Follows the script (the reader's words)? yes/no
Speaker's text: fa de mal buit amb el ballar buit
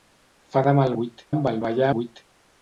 yes